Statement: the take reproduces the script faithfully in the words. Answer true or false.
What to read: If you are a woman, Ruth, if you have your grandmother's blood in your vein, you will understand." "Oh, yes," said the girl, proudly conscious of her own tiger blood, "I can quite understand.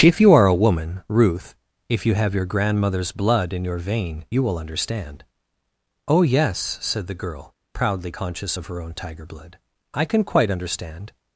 true